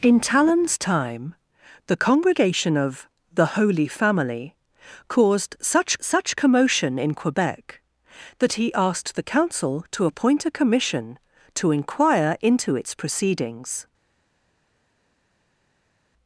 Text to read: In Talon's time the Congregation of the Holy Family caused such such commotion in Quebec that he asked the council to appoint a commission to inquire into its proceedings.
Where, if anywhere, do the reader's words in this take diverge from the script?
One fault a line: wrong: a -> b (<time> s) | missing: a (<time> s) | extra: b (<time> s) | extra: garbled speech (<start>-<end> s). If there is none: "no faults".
no faults